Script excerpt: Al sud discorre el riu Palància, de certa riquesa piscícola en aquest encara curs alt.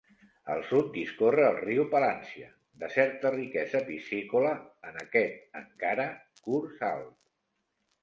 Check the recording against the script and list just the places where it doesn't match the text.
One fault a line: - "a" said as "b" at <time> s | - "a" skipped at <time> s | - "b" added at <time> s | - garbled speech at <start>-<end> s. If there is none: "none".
none